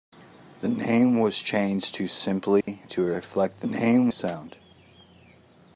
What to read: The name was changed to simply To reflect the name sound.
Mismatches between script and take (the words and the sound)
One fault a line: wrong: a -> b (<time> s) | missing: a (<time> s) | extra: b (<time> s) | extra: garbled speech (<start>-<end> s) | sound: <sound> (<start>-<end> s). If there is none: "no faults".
sound: dropout (2.6-2.7 s)